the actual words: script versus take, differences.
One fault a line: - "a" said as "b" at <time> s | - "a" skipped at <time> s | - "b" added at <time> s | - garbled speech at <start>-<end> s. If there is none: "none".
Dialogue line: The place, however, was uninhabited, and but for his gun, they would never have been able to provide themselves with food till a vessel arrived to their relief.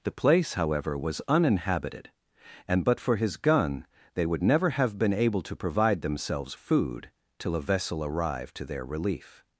- "with" skipped at 6.6 s